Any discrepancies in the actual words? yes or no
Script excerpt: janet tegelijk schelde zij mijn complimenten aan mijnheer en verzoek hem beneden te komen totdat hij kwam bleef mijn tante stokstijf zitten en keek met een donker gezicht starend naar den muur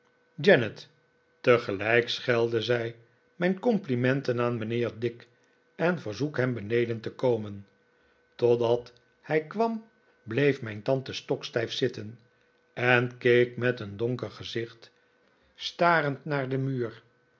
yes